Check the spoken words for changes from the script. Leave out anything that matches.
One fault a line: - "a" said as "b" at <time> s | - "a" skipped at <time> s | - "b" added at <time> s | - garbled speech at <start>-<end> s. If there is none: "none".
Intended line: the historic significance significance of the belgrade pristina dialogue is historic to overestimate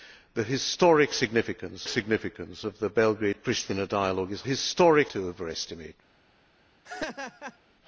none